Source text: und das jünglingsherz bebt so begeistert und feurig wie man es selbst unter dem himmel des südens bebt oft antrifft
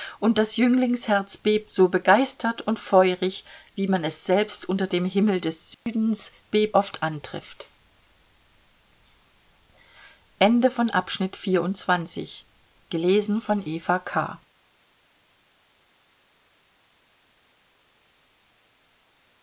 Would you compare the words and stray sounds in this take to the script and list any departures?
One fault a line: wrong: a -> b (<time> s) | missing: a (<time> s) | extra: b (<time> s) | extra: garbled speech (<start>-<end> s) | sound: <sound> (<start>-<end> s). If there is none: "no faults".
sound: dropout (5.7-5.9 s)